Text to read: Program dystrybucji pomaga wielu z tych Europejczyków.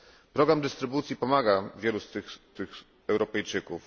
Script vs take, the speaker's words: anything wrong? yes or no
yes